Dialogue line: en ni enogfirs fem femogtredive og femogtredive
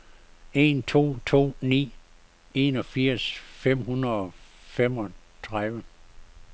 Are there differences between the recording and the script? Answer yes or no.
yes